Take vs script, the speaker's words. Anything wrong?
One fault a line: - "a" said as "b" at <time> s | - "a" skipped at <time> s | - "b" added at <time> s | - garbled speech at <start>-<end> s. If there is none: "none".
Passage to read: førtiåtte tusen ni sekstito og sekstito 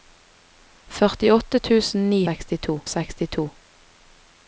none